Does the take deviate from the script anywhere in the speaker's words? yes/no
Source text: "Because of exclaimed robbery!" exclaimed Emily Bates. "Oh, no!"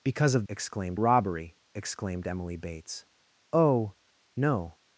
no